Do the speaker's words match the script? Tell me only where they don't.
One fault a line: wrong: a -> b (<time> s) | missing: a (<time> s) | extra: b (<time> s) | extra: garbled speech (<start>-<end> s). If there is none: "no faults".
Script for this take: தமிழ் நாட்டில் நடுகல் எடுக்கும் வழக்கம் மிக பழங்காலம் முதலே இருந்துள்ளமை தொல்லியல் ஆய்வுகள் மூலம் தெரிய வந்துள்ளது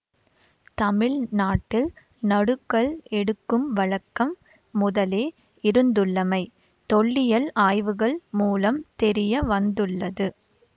missing: மிக பழங்காலம் (4.3 s)